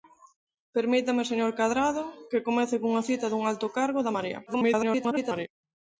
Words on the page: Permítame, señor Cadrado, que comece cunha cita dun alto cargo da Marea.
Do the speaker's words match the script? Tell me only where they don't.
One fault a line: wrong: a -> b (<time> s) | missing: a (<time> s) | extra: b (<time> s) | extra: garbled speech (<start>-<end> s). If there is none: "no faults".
extra: garbled speech (4.5-5.5 s)